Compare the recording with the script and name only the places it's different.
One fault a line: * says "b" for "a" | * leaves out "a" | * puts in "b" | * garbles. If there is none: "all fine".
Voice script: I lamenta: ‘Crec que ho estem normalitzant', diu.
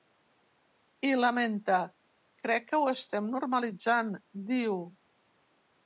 all fine